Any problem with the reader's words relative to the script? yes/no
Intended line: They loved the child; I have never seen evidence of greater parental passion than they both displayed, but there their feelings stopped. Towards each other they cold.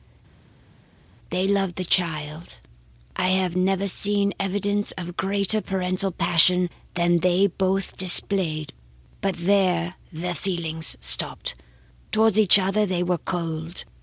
yes